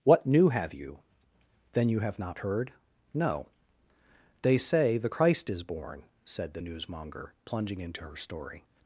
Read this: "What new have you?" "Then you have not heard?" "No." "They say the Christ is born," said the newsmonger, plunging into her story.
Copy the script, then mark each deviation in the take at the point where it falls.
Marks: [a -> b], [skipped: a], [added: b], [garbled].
"What new have you?" "Then you have not heard?" "No." "They say the Christ is born," said the newsmonger, plunging into her story.